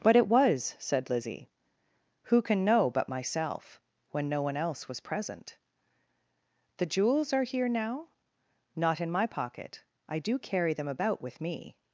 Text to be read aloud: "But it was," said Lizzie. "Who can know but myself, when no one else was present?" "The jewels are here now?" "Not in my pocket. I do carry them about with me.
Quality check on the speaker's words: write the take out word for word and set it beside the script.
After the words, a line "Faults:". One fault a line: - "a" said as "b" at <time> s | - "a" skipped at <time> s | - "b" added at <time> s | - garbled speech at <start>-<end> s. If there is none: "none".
"But it was," said Lizzie. "Who can know but myself, when no one else was present?" "The jewels are here now?" "Not in my pocket. I do carry them about with me.
Faults:
none